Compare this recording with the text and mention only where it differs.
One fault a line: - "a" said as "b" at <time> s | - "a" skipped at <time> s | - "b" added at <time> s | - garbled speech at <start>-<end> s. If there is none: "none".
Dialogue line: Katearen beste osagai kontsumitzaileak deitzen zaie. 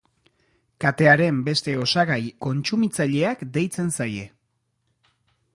none